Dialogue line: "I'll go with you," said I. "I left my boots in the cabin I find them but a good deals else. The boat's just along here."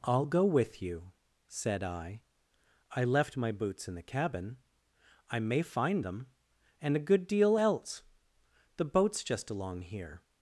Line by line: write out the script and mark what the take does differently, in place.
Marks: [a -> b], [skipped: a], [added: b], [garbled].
"I'll go with you," said I. "I left my boots in the cabin I [added: may] find them [but -> and] a good [deals -> deal] else. The boat's just along here."